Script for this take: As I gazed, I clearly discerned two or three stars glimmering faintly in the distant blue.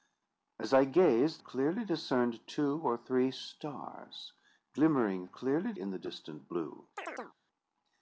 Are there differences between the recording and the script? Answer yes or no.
yes